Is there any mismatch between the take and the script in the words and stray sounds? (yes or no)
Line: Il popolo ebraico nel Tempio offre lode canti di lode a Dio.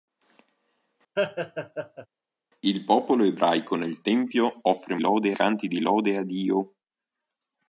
yes